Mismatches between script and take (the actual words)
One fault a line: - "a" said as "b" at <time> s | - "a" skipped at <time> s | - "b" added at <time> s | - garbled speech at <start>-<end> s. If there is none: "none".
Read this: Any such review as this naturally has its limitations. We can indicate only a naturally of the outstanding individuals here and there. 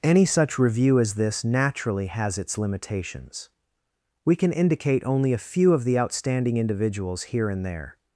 - "naturally" said as "few" at 5.4 s